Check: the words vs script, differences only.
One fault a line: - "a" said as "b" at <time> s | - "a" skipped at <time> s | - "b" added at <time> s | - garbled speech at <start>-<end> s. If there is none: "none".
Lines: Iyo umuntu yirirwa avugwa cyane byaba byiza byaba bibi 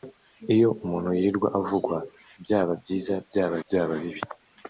- "cyane" skipped at 2.0 s
- "byaba" added at 3.6 s